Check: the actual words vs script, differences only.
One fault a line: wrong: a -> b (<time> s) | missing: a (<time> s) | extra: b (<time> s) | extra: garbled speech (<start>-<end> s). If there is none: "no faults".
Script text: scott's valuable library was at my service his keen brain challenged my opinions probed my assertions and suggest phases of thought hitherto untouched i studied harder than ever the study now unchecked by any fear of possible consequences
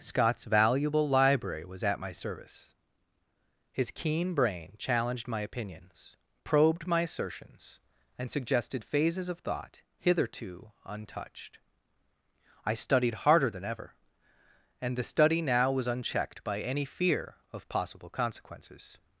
wrong: suggest -> suggested (8.3 s)
extra: and (14.8 s)
extra: was (15.7 s)